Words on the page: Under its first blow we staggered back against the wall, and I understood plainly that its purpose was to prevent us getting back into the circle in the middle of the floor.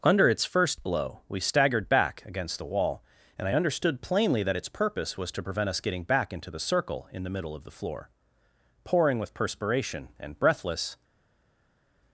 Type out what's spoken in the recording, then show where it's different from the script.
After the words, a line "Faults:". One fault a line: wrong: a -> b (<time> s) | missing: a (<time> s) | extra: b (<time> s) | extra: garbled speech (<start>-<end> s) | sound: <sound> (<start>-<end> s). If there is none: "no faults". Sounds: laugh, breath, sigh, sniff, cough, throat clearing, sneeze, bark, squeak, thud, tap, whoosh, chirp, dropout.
Under its first blow we staggered back against the wall, and I understood plainly that its purpose was to prevent us getting back into the circle in the middle of the floor. "Pouring with perspiration, and breathless
Faults:
extra: Pouring with perspiration and breathless (8.8 s)